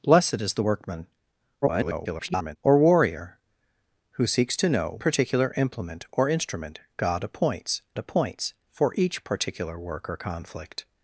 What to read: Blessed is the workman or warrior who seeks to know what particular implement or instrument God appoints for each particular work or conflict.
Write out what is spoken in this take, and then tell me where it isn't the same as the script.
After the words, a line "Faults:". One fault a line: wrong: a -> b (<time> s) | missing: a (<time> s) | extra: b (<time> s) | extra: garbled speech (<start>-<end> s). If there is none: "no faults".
Blessed is the workman [garbled] or warrior who seeks to know particular implement or instrument God appoints appoints for each particular work or conflict.
Faults:
extra: garbled speech (1.6-2.6 s)
missing: what (5.0 s)
extra: appoints (8.0 s)